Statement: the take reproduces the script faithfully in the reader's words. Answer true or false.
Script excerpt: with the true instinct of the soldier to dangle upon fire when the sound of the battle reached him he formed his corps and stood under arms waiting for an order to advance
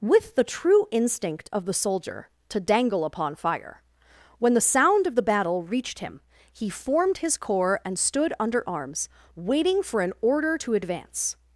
true